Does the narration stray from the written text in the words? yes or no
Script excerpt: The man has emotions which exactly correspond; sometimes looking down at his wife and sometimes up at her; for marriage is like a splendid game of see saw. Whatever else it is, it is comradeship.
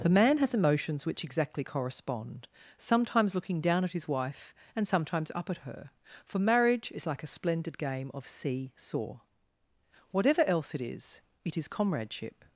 no